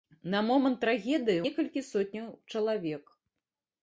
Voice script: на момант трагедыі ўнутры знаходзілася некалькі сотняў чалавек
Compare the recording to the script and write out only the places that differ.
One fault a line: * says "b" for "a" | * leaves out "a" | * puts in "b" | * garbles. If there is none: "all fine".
* leaves out "ўнутры знаходзілася"